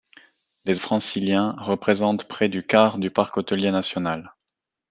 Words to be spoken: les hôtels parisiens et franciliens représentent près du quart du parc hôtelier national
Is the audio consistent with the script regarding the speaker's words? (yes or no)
no